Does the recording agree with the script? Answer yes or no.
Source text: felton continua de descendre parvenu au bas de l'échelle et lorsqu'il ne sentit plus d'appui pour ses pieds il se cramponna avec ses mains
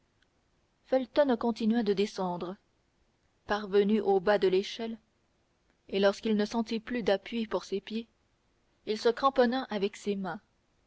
yes